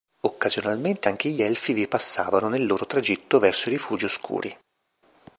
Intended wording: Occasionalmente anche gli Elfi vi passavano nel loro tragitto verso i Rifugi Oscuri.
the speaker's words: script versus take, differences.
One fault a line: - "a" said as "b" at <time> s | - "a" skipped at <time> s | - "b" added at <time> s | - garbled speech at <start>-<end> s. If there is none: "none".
none